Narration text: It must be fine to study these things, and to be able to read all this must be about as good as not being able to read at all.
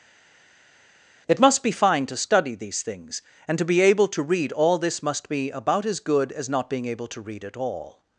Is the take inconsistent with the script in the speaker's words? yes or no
no